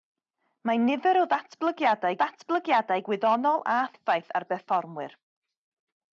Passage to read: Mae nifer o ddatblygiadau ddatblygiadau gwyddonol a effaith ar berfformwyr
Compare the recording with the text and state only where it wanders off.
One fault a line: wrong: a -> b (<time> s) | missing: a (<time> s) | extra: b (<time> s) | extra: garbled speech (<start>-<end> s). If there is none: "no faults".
no faults